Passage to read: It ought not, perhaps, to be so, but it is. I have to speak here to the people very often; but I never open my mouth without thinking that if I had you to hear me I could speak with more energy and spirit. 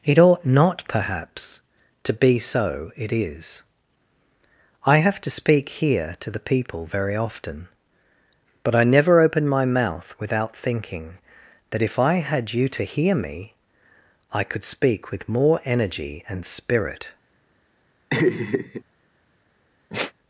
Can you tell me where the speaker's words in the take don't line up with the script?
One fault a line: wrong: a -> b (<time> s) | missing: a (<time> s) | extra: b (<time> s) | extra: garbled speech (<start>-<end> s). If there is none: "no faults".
missing: but (2.9 s)